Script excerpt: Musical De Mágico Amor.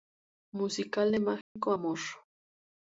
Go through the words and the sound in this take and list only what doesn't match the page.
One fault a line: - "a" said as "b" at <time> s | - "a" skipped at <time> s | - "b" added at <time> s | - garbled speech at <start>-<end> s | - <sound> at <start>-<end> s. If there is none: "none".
- dropout at 1.4-1.6 s